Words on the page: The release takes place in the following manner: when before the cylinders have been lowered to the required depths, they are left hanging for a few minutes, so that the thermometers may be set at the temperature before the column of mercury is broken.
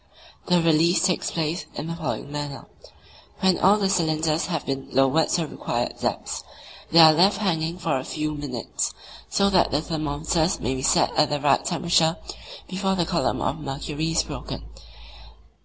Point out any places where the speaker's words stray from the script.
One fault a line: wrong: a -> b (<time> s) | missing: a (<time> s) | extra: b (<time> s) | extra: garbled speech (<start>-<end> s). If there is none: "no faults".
wrong: before -> all (3.6 s)
extra: right (11.4 s)